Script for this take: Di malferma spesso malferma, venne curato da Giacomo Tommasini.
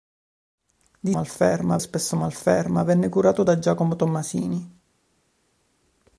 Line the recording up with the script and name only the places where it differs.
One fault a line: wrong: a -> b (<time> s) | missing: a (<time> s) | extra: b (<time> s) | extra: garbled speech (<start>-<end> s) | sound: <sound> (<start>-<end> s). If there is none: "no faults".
no faults